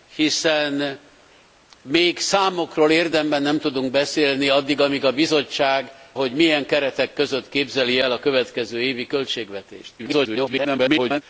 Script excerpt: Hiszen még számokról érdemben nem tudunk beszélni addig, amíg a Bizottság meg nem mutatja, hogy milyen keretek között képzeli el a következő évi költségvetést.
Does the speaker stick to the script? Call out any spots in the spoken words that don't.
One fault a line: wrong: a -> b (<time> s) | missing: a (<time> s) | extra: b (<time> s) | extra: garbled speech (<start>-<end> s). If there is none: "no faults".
missing: meg nem mutatja (5.9 s)
extra: garbled speech (10.0-11.2 s)